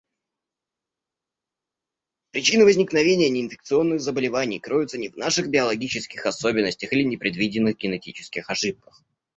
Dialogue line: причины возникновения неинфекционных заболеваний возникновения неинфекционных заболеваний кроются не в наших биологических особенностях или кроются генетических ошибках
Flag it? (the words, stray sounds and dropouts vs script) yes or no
yes